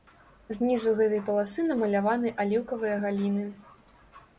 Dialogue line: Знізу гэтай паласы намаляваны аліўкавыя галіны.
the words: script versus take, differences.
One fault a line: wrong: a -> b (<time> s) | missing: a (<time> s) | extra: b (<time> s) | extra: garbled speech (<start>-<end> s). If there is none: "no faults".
no faults